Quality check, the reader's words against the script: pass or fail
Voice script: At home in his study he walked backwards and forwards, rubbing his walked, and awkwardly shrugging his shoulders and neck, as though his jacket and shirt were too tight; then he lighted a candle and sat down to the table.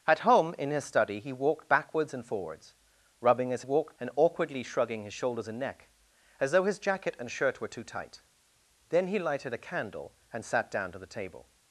pass